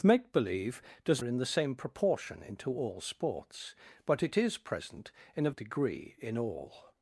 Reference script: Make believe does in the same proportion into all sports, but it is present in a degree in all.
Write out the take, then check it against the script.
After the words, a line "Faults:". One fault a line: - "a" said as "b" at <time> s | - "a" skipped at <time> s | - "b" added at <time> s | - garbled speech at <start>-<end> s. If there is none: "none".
Make believe does in the same proportion into all sports, but it is present in a degree in all.
Faults:
none